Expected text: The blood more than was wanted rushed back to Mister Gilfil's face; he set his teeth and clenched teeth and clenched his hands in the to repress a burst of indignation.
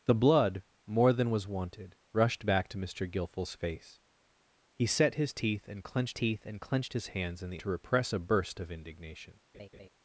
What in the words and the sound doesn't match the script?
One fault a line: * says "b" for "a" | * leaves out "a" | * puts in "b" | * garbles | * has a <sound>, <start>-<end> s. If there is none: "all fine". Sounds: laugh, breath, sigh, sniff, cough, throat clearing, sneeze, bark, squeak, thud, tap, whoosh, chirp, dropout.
* has a laugh, 9.5-9.9 s